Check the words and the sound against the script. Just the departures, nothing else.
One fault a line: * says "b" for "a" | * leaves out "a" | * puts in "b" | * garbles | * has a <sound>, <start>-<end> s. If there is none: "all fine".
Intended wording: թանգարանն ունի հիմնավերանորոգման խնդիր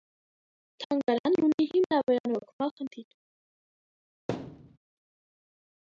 * has a thud, 4.3-4.8 s